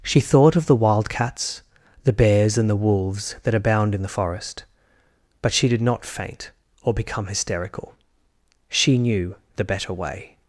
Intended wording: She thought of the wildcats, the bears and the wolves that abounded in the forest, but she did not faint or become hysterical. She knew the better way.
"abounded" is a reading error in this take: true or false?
true